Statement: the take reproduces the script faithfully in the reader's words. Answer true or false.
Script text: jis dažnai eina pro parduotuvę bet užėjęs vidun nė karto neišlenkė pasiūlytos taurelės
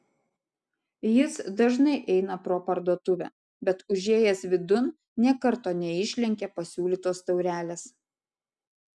true